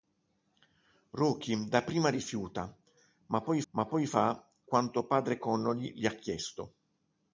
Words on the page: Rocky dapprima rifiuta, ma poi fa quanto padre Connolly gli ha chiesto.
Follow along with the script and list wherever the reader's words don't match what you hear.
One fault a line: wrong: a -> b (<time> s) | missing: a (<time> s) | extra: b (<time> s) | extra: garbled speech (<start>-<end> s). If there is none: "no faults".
extra: ma poi (3.7 s)